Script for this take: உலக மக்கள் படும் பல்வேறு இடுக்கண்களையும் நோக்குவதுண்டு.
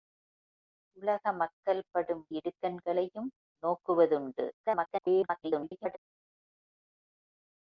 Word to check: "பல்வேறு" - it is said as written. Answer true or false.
false